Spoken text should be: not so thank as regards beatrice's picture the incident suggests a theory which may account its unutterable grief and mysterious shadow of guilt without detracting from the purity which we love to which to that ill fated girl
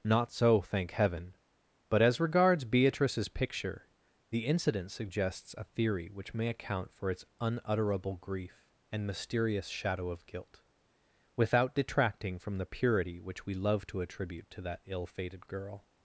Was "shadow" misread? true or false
false